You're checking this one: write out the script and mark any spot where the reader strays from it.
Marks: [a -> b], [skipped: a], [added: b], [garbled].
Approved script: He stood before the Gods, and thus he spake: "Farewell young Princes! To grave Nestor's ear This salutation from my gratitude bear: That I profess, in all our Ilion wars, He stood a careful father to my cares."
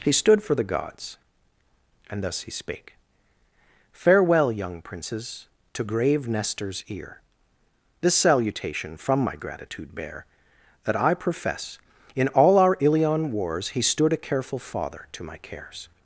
He stood [before -> for] the Gods, and thus he spake: "Farewell young Princes! To grave Nestor's ear This salutation from my gratitude bear: That I profess, in all our Ilion wars, He stood a careful father to my cares."